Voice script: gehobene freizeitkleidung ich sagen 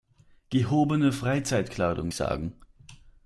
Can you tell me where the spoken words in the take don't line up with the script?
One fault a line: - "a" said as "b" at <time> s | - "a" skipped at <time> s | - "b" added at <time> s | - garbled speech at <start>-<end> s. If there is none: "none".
none